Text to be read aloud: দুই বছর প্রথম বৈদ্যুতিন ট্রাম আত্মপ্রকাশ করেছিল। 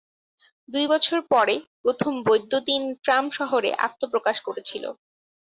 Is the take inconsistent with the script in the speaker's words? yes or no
yes